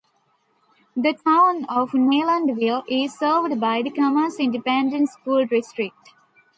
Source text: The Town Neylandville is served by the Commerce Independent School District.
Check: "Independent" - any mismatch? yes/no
no